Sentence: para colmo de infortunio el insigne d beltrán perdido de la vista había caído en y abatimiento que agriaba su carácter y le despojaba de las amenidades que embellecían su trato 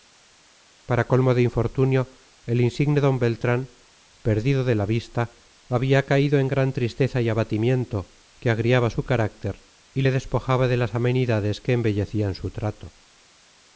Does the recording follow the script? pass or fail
fail